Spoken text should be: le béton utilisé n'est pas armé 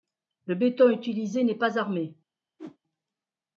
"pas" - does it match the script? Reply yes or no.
yes